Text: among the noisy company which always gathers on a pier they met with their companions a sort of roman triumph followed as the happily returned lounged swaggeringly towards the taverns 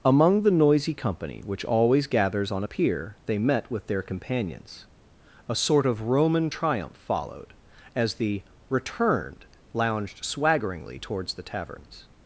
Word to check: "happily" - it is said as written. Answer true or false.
false